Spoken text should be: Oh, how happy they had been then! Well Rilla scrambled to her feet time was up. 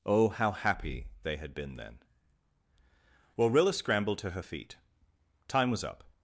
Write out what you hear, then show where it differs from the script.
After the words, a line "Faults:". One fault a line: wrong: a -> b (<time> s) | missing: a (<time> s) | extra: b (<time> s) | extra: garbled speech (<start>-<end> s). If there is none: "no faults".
Oh, how happy they had been then! Well Rilla scrambled to her feet time was up.
Faults:
no faults